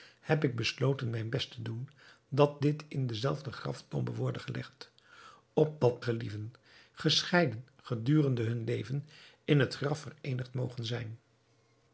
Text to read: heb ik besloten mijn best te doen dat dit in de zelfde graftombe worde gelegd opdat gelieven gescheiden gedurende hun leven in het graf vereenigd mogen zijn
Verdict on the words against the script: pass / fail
pass